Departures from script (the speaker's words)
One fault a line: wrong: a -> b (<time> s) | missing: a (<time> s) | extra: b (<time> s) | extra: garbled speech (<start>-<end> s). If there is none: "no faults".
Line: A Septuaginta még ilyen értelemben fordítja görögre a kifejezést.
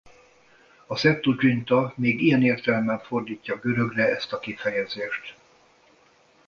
extra: ezt (4.2 s)